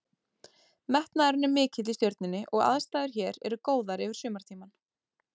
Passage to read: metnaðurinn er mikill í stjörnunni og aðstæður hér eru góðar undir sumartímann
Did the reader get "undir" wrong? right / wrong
wrong